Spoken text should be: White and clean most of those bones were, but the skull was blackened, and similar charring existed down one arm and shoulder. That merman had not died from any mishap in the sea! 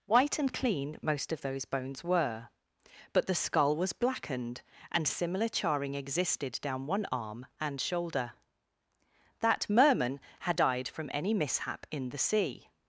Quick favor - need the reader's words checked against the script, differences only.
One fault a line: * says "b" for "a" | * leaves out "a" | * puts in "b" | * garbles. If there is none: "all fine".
* leaves out "not"